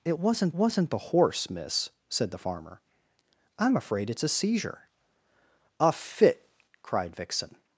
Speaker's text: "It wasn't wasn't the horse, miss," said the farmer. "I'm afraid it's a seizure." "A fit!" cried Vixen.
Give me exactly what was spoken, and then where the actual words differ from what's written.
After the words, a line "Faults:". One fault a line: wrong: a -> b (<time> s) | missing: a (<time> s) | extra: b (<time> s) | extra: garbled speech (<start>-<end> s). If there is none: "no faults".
"It wasn't wasn't the horse, miss," said the farmer. "I'm afraid it's a seizure." "A fit!" cried Vixen.
Faults:
no faults